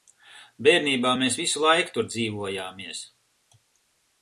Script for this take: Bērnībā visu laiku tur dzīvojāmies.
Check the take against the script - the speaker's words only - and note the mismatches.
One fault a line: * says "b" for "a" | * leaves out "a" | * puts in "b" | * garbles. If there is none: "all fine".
* puts in "mēs"